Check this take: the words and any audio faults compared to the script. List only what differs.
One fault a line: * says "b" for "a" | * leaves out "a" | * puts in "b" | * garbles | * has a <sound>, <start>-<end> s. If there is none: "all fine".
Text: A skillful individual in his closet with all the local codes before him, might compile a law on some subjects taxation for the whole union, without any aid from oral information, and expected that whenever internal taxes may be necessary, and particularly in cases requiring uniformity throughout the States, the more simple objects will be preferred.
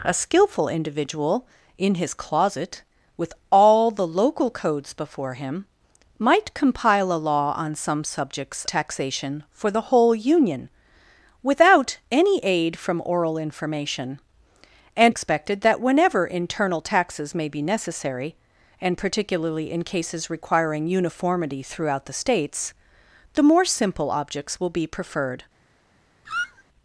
* has a squeak, 26.3-26.6 s